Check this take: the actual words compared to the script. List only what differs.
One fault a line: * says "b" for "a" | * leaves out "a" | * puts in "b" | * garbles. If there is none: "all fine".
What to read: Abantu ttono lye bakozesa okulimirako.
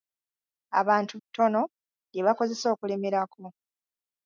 all fine